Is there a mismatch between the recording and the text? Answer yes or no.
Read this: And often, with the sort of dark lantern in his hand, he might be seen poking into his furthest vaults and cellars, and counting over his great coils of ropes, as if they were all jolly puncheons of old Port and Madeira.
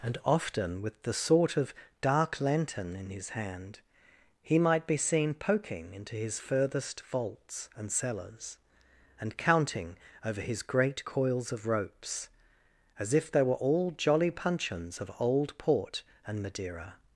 no